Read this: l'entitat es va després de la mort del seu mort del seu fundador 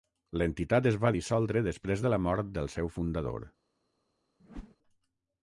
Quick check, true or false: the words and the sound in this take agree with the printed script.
false